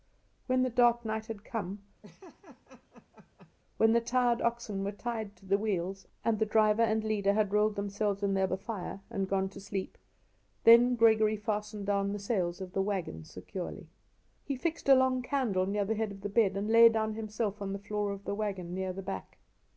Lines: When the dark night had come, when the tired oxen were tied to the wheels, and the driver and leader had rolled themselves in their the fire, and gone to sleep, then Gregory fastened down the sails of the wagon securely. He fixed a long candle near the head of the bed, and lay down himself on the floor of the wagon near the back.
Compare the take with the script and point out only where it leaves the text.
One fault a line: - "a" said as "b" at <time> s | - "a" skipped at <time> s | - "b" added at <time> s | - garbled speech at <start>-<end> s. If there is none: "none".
none